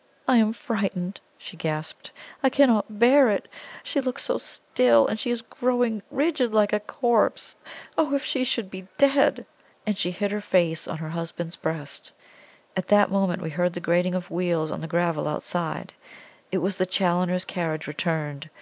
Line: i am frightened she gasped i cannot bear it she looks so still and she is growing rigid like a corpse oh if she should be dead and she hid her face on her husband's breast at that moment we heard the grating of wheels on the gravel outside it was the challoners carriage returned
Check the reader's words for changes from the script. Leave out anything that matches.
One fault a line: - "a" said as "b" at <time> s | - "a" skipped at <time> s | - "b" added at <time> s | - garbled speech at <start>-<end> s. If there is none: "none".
none